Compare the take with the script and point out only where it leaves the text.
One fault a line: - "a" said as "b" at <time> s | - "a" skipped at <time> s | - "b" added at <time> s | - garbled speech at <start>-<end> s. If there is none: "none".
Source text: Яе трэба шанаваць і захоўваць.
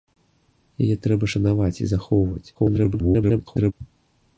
- garbled speech at 2.5-3.7 s